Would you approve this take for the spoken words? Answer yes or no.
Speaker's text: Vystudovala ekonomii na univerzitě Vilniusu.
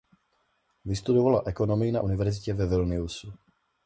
no